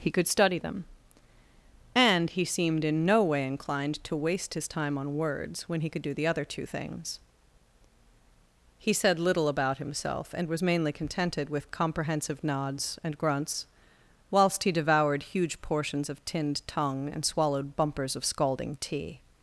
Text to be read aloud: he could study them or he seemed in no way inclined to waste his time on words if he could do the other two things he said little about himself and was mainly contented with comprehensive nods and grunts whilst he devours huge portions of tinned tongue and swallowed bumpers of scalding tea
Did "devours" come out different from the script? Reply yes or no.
yes